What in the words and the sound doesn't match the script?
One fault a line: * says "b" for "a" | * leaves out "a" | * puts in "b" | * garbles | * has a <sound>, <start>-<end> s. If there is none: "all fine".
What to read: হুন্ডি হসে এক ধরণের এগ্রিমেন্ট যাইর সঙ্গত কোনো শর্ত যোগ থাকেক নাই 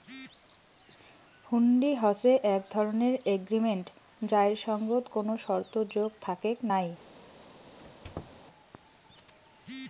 * has a squeak, 7.8-8.4 s